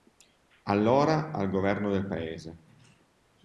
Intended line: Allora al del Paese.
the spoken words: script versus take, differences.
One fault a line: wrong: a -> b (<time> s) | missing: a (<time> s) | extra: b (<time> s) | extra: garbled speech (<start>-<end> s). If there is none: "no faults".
extra: governo (1.5 s)